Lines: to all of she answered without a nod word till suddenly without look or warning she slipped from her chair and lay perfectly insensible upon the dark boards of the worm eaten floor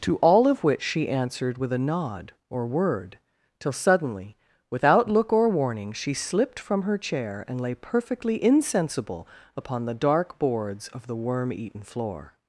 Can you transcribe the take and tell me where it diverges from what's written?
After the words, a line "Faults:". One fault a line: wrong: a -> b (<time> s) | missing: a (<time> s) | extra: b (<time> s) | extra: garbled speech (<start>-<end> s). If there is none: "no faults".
to all of which she answered with a nod or word till suddenly without look or warning she slipped from her chair and lay perfectly insensible upon the dark boards of the worm eaten floor
Faults:
extra: which (0.6 s)
wrong: without -> with (1.6 s)
extra: or (2.5 s)